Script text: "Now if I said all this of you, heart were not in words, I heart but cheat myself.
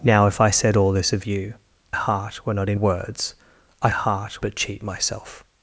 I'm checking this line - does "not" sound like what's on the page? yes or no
yes